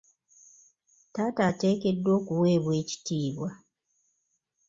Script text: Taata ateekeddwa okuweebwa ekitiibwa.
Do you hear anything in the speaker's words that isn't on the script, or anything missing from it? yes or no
no